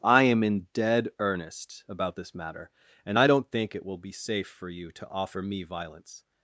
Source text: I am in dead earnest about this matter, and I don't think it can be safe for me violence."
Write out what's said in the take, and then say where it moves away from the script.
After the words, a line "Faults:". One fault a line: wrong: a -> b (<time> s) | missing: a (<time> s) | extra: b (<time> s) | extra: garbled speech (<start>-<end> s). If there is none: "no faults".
I am in dead earnest about this matter, and I don't think it will be safe for you to offer me violence."
Faults:
wrong: can -> will (3.8 s)
extra: you to offer (4.7 s)